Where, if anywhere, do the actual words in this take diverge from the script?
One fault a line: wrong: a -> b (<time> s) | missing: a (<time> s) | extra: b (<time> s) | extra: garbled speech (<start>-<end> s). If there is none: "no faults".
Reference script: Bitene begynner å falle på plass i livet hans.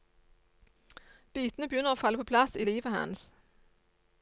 no faults